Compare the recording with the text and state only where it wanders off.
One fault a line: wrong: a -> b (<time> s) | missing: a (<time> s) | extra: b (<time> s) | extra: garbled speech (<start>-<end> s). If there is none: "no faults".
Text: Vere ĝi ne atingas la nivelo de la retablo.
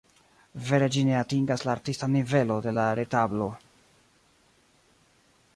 extra: artistan (1.8 s)